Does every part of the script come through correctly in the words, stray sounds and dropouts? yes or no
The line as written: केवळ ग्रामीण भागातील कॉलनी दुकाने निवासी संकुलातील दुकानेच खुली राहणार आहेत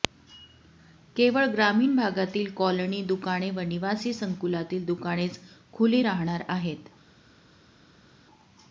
no